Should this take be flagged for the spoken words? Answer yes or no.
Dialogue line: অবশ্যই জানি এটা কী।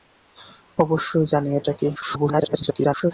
yes